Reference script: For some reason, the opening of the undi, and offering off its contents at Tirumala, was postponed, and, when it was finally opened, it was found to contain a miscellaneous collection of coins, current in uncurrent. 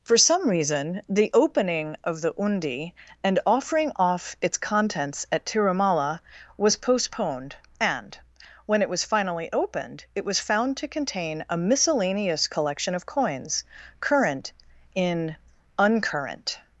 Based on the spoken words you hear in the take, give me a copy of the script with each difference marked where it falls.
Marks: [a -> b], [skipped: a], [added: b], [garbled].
For some reason, the opening of the undi, and offering off its contents at Tirumala, was postponed, and, when it was finally opened, it was found to contain a miscellaneous collection of coins, current in uncurrent.